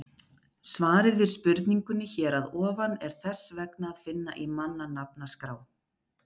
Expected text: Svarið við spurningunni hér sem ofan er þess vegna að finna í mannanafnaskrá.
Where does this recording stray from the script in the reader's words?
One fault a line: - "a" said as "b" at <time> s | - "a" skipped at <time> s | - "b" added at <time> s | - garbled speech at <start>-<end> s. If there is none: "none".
- "sem" said as "að" at 2.4 s